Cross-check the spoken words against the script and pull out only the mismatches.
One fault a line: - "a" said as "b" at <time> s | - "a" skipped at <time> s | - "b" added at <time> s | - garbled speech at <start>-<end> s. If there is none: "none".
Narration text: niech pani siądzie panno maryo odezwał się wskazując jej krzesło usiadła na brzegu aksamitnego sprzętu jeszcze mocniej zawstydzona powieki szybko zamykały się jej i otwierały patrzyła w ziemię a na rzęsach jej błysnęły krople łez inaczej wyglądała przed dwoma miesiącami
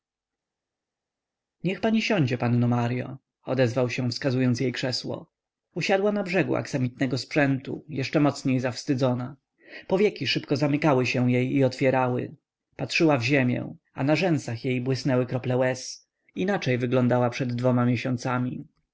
none